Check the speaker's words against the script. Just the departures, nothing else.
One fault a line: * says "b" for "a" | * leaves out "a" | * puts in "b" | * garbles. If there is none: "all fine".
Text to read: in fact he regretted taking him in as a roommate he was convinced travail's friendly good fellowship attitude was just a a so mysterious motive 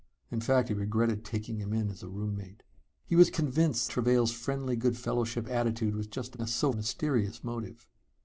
all fine